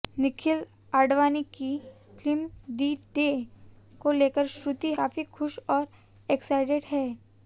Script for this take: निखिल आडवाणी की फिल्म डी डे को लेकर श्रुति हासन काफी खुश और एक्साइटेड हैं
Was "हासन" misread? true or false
true